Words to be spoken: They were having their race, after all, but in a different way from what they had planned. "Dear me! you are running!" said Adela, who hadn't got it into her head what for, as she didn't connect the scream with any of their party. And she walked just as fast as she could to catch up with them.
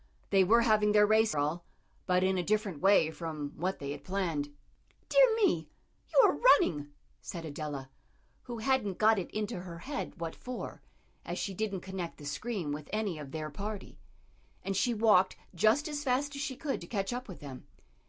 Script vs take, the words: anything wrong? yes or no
yes